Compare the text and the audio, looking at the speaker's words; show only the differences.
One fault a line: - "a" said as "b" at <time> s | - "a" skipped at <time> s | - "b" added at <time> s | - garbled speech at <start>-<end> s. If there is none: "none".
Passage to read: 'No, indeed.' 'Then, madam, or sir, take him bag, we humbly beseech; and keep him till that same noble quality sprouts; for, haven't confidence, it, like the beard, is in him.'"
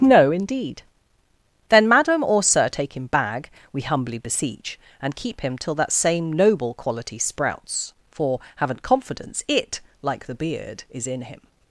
none